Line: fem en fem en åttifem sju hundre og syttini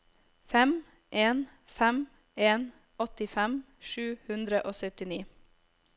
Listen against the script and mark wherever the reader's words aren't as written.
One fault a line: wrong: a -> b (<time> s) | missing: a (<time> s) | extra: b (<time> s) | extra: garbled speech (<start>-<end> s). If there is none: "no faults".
no faults